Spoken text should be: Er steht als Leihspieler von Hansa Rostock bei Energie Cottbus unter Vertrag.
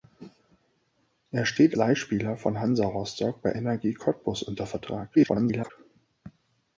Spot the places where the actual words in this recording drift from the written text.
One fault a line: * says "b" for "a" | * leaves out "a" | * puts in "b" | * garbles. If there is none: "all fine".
* leaves out "als"
* garbles